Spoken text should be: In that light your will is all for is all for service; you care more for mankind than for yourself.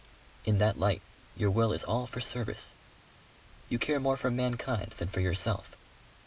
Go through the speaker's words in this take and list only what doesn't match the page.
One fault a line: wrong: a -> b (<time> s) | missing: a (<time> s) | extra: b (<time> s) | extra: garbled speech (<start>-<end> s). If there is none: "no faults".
missing: is all for (2.2 s)